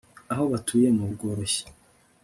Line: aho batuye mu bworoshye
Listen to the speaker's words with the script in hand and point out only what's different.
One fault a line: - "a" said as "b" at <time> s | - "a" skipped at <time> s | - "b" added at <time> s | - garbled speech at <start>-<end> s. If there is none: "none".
none